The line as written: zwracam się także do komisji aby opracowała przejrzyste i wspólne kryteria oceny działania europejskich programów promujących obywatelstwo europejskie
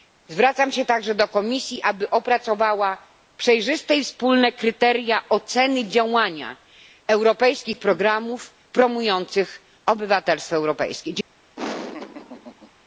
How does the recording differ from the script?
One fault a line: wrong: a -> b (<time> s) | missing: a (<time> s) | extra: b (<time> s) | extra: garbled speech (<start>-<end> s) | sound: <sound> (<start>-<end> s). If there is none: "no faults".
sound: laugh (11.6-12.7 s)